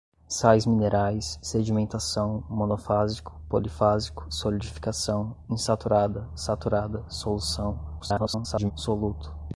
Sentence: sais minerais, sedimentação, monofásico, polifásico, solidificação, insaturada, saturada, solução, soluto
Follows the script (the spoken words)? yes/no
no